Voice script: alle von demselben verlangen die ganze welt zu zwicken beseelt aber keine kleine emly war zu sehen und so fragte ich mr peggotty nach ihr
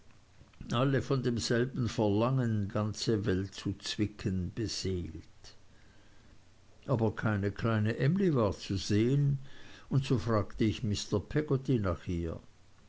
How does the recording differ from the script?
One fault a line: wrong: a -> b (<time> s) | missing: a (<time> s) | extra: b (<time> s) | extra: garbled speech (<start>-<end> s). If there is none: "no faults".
missing: die (2.7 s)